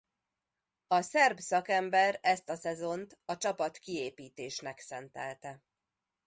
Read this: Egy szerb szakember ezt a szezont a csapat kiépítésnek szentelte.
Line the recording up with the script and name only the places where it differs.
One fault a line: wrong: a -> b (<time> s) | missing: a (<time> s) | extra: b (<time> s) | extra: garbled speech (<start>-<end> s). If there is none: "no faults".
wrong: Egy -> A (0.9 s)